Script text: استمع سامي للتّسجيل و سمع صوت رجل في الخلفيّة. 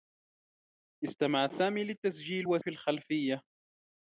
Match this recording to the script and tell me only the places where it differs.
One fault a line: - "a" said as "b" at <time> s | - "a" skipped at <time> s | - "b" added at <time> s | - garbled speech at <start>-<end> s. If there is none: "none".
- "سمع صوت رجل" skipped at 2.6 s